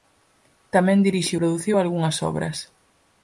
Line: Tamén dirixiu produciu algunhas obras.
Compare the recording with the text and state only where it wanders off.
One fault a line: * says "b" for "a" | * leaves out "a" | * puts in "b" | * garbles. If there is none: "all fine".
all fine